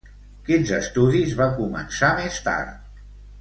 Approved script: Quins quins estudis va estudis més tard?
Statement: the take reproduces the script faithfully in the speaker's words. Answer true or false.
false